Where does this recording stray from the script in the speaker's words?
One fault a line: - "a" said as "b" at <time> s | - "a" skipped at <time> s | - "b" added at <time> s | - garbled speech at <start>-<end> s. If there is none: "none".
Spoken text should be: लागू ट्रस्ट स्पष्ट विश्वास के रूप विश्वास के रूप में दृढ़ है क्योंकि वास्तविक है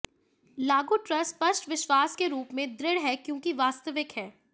- "विश्वास के रूप" skipped at 2.5 s